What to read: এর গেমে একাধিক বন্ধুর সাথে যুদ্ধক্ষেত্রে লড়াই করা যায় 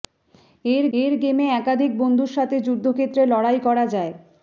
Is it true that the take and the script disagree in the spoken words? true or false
true